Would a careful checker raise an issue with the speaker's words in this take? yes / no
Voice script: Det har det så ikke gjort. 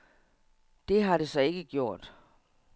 no